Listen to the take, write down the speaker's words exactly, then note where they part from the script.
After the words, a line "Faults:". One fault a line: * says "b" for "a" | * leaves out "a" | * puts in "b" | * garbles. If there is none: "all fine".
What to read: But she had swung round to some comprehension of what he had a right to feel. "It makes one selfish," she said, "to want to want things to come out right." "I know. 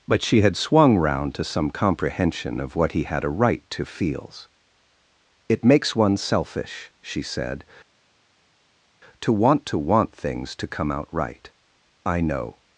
But she had swung round to some comprehension of what he had a right to feels. "It makes one selfish," she said, "to want to want things to come out right." "I know.
Faults:
* says "feels" for "feel"